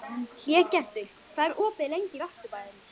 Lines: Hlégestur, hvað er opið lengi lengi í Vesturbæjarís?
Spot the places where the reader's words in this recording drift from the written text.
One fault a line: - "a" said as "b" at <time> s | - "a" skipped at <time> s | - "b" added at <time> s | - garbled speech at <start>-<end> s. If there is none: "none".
- "lengi" skipped at 2.2 s